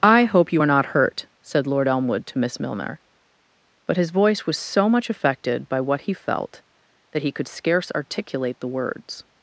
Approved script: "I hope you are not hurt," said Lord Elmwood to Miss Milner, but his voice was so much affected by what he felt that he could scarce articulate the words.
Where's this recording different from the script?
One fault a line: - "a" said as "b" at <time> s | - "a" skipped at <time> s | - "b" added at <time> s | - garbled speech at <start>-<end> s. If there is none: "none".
none